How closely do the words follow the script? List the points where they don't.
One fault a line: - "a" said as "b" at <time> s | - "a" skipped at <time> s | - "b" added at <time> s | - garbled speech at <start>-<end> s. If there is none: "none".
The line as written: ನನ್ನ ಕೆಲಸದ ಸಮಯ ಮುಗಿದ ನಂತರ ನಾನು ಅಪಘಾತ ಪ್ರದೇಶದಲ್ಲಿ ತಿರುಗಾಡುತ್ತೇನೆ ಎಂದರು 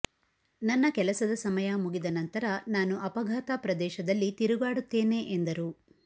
none